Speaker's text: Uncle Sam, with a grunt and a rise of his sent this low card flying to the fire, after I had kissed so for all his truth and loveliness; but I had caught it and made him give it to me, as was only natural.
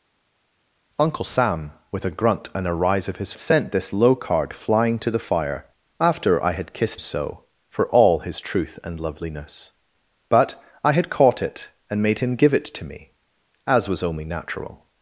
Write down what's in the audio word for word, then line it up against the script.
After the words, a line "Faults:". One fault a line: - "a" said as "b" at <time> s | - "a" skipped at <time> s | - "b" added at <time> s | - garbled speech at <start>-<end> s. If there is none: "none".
Uncle Sam, with a grunt and a rise of his sent this low card flying to the fire, after I had kissed so for all his truth and loveliness; but I had caught it and made him give it to me, as was only natural.
Faults:
none